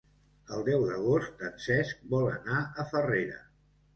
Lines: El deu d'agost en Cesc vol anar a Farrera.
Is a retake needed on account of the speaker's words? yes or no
no